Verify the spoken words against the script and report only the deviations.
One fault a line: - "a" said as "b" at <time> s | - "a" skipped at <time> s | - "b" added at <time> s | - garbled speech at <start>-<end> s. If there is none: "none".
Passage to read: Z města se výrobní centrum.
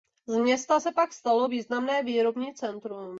- "pak stalo významné" added at 0.9 s